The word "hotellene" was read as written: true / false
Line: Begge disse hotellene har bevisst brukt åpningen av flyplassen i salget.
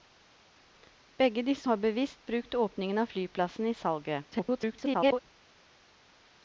false